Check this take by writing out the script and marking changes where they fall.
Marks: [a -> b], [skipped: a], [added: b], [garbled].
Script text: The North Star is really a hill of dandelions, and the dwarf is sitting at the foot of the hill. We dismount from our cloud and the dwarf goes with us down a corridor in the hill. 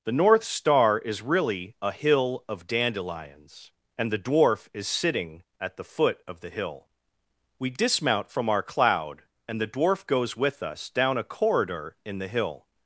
The North Star is really a hill of dandelions, and the dwarf is sitting at the foot of the hill. We dismount from our cloud and the dwarf goes with us down a corridor in the hill.